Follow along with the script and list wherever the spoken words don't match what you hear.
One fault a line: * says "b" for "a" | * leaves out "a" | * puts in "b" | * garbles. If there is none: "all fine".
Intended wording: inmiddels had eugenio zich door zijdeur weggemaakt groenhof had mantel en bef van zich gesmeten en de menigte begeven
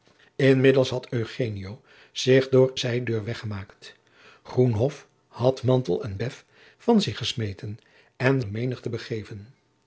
all fine